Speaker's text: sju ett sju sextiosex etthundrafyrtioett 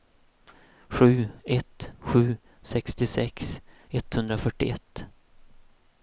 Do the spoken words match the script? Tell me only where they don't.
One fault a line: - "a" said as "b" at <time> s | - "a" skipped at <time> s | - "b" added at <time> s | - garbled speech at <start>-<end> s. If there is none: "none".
none